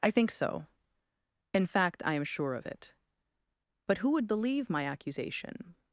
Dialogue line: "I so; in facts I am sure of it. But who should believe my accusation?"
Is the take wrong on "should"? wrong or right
wrong